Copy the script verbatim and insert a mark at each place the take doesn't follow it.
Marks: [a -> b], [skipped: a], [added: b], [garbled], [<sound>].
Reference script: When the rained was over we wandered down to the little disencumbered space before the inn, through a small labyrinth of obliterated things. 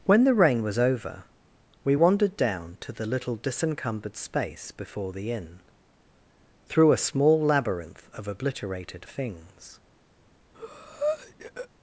When the [rained -> rain] was over we wandered down to the little disencumbered space before the inn, through a small labyrinth of obliterated things. [breath]